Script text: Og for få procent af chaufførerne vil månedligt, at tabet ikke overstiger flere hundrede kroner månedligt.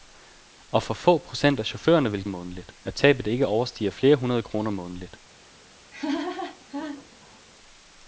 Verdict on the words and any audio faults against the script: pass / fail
fail